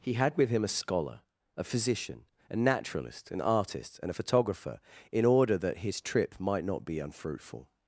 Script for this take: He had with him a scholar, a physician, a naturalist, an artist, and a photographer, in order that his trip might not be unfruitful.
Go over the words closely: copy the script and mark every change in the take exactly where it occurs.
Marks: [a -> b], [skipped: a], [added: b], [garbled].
He had with him a scholar, a physician, a naturalist, an artist, and a photographer, in order that his trip might not be unfruitful.